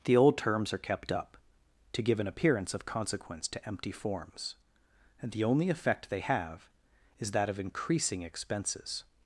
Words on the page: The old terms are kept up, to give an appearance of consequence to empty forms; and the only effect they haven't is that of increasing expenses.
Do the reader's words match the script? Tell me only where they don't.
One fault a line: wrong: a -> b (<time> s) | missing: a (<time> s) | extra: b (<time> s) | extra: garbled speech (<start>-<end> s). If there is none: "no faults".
wrong: haven't -> have (6.2 s)